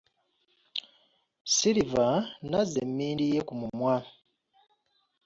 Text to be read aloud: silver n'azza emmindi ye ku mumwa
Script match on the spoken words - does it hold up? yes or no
yes